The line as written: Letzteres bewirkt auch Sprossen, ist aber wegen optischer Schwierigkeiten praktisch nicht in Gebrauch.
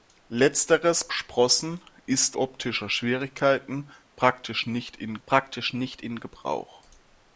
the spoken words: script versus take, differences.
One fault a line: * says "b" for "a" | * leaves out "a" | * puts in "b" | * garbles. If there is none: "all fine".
* leaves out "bewirkt auch"
* says "optischer Schwierigkeiten praktisch nicht in" for "aber wegen optischer Schwierigkeiten"